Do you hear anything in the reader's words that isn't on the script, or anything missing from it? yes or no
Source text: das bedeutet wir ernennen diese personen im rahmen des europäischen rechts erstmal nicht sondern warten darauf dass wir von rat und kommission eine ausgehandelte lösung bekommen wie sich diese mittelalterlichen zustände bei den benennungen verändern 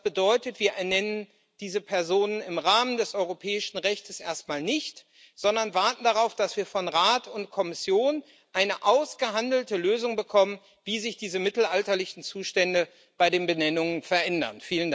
no